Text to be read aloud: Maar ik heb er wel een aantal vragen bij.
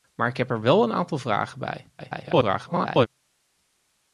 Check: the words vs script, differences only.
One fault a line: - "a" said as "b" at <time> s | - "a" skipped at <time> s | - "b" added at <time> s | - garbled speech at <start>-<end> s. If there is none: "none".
- garbled speech at 2.0-3.1 s